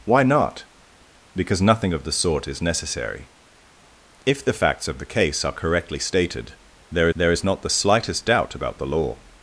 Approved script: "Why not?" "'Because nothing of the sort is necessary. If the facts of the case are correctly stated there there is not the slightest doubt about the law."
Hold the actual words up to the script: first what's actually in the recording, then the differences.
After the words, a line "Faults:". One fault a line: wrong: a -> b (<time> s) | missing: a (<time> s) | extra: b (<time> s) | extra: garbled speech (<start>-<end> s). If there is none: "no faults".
"Why not?" "'Because nothing of the sort is necessary. If the facts of the case are correctly stated there there is not the slightest doubt about the law."
Faults:
no faults